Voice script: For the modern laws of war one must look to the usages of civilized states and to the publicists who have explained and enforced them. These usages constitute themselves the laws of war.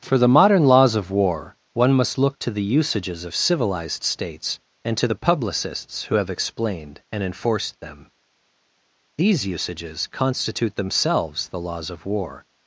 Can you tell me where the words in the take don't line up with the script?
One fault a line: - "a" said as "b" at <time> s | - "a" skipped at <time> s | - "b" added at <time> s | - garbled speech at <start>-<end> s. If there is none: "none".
none